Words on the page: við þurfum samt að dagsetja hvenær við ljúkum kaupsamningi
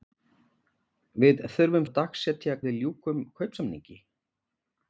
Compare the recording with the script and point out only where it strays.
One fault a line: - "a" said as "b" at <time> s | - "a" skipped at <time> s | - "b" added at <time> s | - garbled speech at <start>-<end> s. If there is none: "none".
- "samt" skipped at 1.9 s
- "hvenær" skipped at 2.6 s